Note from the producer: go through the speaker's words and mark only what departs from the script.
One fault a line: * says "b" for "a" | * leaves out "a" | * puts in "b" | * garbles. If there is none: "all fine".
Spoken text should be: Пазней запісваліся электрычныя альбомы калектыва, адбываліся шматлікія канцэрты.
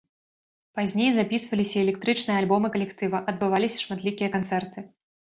all fine